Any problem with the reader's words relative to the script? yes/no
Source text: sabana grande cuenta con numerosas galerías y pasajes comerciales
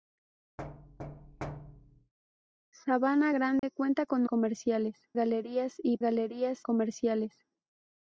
yes